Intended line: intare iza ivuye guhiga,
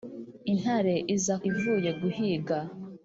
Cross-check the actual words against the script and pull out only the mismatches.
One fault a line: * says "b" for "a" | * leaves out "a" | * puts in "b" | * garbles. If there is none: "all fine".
all fine